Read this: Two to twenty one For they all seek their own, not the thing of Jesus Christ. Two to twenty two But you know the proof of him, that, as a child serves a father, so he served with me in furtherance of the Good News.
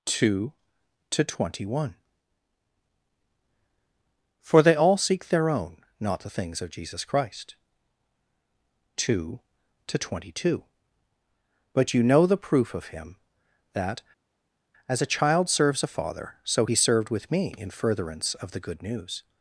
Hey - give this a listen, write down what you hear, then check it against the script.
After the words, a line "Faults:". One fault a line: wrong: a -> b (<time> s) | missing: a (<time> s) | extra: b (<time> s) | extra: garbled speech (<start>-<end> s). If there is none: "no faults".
Two to twenty one For they all seek their own, not the things of Jesus Christ. Two to twenty two But you know the proof of him, that, as a child serves a father, so he served with me in furtherance of the Good News.
Faults:
wrong: thing -> things (6.3 s)